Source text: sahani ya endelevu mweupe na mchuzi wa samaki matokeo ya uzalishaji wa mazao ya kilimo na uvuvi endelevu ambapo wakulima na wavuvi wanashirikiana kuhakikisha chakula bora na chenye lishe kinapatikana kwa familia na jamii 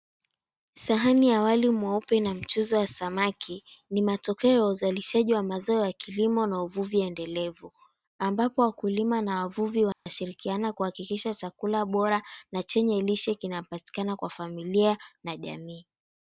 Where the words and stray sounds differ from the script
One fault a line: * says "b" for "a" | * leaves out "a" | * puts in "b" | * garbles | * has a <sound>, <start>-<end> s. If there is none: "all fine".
* says "wali" for "endelevu"
* puts in "ni"
* has a dropout, 9.9-10.1 s